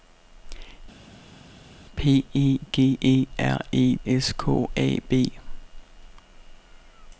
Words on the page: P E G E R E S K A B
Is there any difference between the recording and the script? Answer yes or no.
no